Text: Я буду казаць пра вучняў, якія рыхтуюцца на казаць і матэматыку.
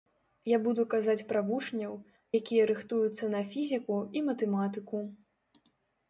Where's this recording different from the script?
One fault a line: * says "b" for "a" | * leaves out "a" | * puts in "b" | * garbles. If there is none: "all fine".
* says "фізіку" for "казаць"